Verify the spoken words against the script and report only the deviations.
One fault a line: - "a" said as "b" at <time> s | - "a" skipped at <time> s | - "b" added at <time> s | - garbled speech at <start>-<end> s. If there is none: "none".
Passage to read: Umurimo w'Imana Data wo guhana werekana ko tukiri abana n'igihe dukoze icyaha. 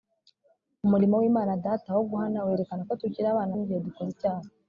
none